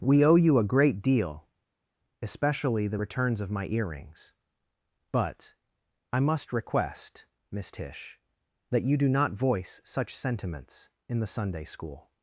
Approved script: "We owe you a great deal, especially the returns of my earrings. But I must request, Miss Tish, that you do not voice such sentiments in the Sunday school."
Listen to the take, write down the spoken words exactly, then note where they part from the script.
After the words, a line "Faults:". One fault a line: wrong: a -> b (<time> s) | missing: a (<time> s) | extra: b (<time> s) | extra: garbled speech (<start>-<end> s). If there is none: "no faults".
"We owe you a great deal, especially the returns of my earrings. But I must request, Miss Tish, that you do not voice such sentiments in the Sunday school."
Faults:
no faults